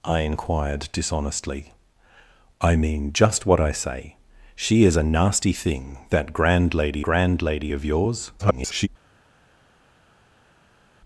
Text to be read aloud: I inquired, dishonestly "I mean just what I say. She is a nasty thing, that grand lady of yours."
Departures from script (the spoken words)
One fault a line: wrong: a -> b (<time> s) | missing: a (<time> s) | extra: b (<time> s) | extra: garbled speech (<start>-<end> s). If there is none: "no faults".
extra: grand lady (7.0 s)
extra: garbled speech (8.4-8.9 s)